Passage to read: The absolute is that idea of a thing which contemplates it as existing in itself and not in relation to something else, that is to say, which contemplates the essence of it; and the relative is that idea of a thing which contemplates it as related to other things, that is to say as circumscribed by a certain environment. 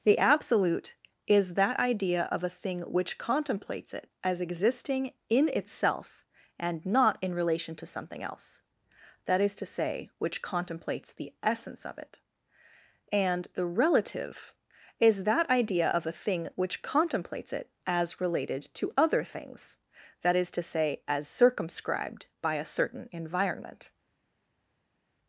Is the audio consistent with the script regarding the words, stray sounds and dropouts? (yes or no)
yes